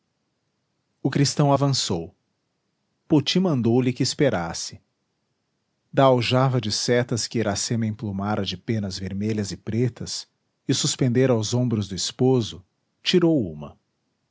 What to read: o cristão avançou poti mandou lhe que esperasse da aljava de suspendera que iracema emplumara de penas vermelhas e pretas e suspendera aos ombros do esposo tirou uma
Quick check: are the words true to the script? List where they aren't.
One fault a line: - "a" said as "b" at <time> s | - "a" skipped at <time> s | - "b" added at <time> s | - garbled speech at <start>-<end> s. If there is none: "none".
- "suspendera" said as "setas" at 6.7 s